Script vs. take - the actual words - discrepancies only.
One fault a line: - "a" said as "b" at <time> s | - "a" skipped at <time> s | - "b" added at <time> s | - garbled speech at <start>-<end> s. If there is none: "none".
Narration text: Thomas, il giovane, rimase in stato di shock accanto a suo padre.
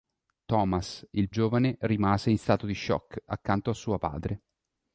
none